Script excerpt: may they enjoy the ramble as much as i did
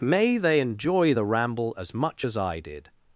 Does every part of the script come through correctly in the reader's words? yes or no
yes